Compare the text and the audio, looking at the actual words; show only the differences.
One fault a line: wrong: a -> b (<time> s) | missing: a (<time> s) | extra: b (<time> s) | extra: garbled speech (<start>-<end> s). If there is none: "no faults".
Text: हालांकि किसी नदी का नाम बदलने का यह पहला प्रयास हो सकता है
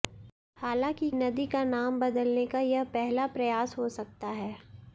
missing: किसी (1.1 s)